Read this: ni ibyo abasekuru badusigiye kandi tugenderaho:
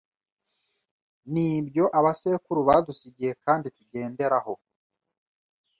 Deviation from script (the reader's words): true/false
false